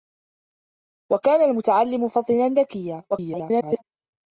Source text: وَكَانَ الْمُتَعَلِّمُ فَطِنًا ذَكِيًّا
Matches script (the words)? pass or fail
fail